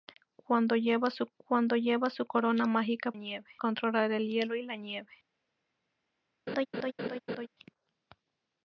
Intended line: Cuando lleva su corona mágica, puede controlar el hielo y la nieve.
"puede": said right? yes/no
no